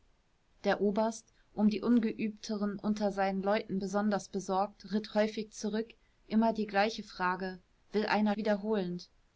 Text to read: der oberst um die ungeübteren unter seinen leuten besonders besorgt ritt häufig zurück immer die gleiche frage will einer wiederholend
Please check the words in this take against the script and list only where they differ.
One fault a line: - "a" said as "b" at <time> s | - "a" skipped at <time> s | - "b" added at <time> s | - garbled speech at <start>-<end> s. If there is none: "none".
none